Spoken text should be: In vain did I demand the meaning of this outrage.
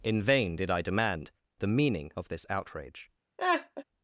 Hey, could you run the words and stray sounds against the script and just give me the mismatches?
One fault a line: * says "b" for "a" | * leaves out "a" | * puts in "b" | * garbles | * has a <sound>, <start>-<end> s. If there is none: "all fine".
* has a laugh, 3.4-3.8 s